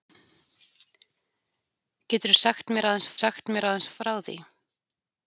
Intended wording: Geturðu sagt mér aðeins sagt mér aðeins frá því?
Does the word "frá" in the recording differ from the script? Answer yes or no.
no